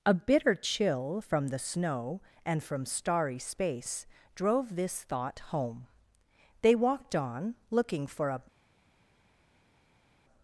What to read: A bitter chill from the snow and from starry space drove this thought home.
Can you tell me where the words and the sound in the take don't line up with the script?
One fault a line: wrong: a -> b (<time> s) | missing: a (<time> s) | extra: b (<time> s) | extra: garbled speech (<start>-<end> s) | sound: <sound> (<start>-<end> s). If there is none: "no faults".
extra: They walked on looking for a (6.6 s)